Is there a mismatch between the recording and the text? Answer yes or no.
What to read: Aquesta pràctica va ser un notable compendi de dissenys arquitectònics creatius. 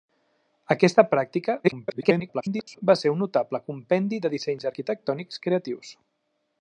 yes